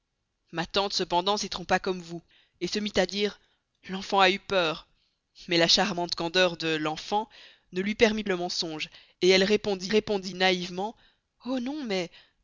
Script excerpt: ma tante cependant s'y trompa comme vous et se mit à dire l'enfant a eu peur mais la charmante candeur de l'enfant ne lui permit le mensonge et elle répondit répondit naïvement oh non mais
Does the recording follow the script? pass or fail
pass